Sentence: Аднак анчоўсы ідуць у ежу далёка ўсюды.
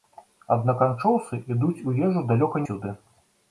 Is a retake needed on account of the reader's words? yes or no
no